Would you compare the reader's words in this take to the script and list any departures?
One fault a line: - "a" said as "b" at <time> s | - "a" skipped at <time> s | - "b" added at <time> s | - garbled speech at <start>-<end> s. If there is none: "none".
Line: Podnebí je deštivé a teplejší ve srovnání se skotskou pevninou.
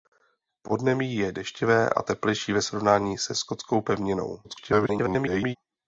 - garbled speech at 4.4-5.6 s